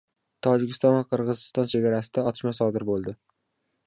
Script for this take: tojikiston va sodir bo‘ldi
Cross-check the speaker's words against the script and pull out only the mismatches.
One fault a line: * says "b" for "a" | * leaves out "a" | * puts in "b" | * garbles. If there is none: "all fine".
* puts in "qirg‘iziston chegarasida otishma"